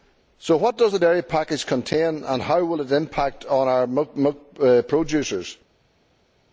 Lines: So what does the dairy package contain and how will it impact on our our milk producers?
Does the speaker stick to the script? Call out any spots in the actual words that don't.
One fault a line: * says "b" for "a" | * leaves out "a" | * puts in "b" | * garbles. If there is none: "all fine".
* leaves out "our"